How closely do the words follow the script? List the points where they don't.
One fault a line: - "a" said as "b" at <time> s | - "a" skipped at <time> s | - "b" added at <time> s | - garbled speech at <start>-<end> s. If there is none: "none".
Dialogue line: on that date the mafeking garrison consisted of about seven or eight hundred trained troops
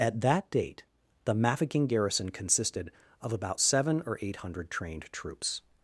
- "on" said as "at" at 0.0 s